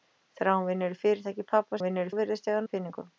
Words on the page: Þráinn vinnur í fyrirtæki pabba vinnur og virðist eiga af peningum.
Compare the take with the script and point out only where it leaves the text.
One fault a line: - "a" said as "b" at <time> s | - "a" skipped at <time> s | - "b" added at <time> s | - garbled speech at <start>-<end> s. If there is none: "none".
none